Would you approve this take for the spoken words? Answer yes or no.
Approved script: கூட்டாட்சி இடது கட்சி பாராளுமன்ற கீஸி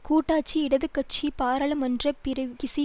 yes